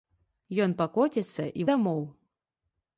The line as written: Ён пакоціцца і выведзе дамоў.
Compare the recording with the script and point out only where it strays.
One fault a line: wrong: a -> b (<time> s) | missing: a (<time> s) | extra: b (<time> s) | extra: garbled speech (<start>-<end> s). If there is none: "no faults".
missing: выведзе (1.7 s)